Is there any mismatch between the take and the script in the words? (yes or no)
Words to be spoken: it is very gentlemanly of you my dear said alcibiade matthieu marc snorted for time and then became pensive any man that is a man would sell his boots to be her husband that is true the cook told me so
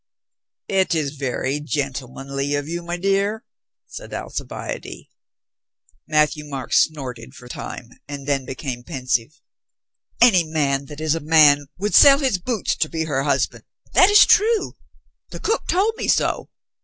no